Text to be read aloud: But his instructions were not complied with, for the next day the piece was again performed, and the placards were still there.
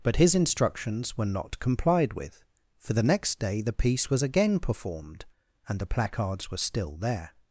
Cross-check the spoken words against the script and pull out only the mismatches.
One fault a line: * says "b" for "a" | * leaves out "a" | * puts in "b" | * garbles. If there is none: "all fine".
all fine